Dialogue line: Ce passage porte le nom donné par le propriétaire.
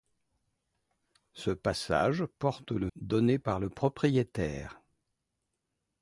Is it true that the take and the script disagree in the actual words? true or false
true